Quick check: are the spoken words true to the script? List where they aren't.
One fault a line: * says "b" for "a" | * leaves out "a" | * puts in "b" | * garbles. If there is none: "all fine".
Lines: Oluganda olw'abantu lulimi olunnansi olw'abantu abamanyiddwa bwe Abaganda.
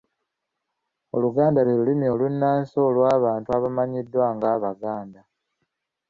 * says "lwe" for "olw'abantu"
* says "nga" for "bwe"